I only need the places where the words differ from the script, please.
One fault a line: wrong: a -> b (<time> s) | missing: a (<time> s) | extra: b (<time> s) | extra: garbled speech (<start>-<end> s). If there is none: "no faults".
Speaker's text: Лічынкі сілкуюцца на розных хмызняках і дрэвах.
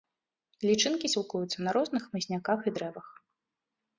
no faults